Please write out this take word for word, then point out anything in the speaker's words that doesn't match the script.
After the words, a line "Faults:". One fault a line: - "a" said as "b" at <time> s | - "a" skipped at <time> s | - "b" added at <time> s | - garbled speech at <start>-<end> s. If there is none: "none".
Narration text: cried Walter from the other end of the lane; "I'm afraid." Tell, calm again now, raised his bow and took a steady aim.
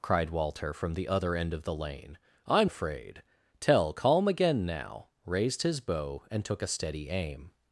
cried Walter from the other end of the lane; "I'm afraid." Tell, calm again now, raised his bow and took a steady aim.
Faults:
none